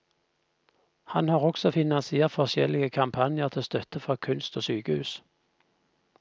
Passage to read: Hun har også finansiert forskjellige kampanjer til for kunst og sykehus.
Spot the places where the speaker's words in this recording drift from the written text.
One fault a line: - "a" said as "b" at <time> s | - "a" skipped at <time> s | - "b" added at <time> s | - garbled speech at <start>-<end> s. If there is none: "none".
- "Hun" said as "Han" at 1.0 s
- "støtte" added at 3.6 s